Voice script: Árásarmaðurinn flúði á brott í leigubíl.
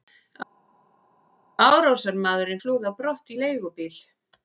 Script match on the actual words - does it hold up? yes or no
yes